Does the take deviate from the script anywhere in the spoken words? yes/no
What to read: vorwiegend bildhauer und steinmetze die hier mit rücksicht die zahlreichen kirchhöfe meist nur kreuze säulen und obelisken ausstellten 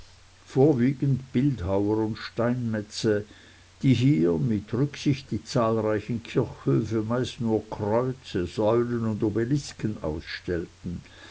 no